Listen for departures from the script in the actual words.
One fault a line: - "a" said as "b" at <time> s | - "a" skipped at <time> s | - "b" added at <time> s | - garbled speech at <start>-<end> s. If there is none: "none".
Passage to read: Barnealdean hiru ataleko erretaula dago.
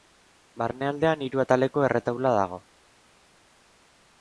none